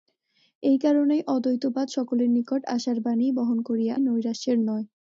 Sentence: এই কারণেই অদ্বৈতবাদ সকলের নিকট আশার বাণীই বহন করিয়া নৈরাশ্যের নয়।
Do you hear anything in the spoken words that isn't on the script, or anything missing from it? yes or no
no